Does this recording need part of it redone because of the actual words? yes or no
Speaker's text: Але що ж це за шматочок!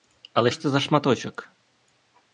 yes